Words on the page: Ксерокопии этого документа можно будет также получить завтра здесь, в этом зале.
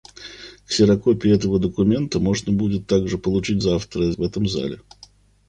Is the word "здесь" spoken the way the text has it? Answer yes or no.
no